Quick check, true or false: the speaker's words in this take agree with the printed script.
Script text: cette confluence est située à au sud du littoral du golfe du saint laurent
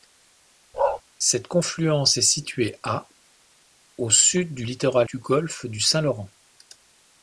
true